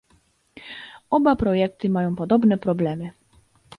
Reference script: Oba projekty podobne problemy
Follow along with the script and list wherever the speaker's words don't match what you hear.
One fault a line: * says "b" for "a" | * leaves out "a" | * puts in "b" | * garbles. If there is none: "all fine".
* puts in "mają"